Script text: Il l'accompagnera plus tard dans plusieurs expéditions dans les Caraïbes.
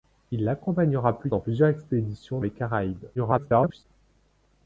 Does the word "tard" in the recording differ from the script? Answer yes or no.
yes